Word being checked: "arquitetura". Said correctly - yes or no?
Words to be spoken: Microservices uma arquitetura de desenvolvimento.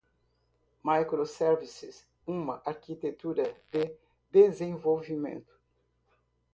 yes